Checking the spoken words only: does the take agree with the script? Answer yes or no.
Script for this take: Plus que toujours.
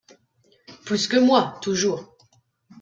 no